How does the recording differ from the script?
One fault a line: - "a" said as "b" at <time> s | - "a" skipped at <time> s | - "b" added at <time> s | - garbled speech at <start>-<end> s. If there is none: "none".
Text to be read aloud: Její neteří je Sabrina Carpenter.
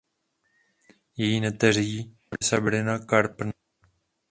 - "je" skipped at 2.2 s